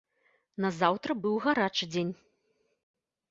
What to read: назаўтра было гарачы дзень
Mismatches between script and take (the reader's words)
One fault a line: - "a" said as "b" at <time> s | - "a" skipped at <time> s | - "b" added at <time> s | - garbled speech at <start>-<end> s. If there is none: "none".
- "было" said as "быў" at 1.2 s